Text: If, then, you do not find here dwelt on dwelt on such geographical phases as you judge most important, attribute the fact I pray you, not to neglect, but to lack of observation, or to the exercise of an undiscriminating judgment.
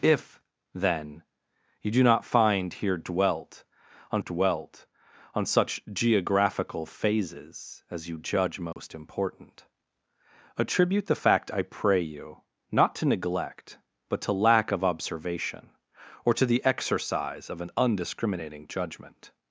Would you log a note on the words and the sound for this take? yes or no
yes